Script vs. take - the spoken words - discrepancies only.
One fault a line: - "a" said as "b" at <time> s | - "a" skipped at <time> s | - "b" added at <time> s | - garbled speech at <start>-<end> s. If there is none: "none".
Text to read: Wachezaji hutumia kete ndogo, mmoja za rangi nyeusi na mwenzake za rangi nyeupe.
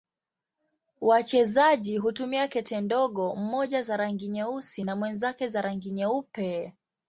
none